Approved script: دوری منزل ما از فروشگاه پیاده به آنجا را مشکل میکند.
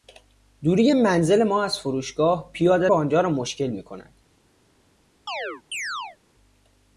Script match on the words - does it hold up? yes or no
yes